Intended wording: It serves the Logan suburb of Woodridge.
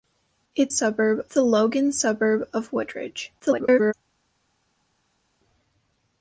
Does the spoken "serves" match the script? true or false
false